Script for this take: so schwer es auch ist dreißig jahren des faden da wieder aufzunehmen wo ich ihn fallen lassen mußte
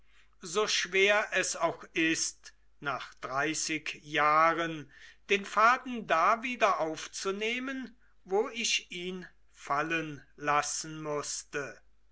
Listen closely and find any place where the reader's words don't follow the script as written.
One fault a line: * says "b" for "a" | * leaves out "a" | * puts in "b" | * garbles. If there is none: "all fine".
* puts in "nach"
* says "den" for "des"